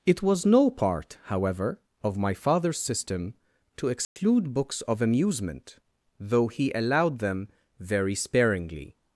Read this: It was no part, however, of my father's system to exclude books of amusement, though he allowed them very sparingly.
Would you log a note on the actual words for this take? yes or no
no